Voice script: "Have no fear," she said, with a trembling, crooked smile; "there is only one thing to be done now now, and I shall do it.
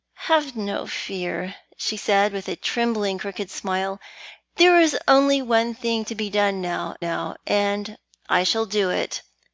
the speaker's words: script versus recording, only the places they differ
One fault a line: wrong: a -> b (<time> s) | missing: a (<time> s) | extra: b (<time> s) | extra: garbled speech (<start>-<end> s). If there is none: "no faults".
no faults